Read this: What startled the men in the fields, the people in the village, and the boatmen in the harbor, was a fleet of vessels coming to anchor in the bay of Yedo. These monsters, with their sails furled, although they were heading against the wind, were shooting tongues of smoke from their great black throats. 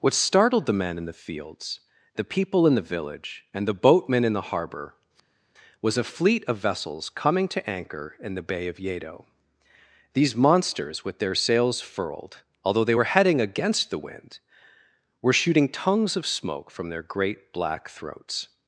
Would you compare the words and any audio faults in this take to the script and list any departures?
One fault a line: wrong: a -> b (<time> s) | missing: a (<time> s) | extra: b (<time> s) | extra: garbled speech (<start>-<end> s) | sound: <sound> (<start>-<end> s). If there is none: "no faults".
no faults